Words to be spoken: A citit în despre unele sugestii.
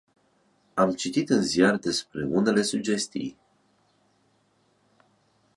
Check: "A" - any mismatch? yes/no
yes